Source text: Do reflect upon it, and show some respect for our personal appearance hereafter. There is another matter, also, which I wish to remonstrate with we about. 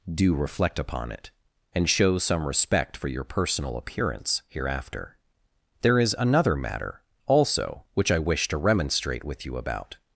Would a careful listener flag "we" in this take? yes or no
yes